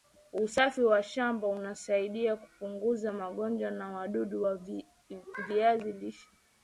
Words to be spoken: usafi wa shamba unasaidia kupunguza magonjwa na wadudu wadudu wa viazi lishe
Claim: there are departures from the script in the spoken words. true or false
true